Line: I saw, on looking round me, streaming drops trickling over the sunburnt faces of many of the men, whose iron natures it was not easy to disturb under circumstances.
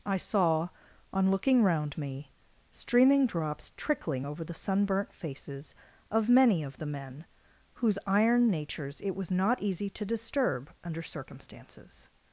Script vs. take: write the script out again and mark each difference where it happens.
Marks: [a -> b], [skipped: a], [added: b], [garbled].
I saw, on looking round me, streaming drops trickling over the sunburnt faces of many of the men, whose iron natures it was not easy to disturb under circumstances.